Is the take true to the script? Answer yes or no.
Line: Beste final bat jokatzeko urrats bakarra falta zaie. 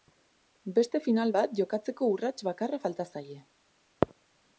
yes